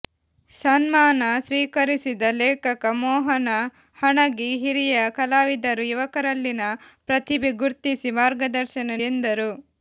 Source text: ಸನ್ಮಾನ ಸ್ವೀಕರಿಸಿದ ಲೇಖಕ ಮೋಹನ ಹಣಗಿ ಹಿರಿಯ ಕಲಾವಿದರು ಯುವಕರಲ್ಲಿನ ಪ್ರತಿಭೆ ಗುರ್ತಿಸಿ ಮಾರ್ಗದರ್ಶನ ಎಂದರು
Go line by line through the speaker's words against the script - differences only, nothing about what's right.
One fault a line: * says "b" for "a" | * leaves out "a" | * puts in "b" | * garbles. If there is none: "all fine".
all fine